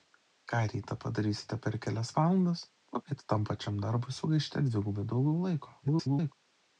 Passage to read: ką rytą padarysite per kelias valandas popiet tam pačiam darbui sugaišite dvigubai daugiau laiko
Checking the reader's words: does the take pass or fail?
fail